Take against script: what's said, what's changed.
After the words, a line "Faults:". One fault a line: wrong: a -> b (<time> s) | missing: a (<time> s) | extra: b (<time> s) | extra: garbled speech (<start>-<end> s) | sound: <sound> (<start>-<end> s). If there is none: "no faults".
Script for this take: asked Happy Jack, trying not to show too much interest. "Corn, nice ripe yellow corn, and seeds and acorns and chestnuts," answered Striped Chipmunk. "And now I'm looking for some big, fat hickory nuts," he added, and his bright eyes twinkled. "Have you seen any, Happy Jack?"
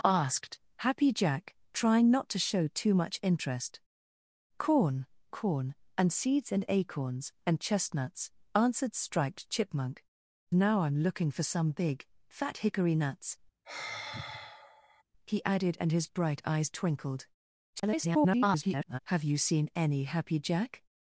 asked Happy Jack, trying not to show too much interest. "Corn, corn, and seeds and acorns and chestnuts," answered Striped Chipmunk. "Now I'm looking for some big, fat hickory nuts," he added, and his bright eyes twinkled. [garbled] "Have you seen any, Happy Jack?"
Faults:
missing: nice ripe yellow (5.0 s)
missing: And (10.0 s)
sound: sigh (13.6-15.0 s)
extra: garbled speech (17.8-19.0 s)